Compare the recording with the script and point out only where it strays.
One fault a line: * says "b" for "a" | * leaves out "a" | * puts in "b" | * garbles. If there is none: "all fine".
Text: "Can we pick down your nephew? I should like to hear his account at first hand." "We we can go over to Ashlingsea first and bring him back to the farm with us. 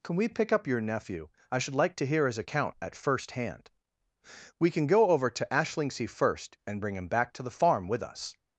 * says "up" for "down"
* leaves out "we"